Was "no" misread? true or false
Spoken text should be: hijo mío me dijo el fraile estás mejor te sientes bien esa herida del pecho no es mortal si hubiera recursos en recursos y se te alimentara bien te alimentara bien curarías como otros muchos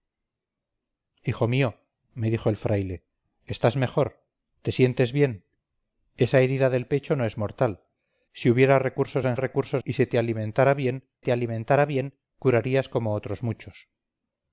false